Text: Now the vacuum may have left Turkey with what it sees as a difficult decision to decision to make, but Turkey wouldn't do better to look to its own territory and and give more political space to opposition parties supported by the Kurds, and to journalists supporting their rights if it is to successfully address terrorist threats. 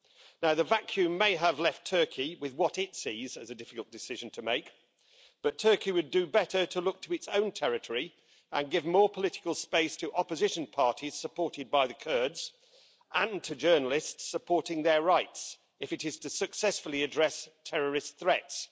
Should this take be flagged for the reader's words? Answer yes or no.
yes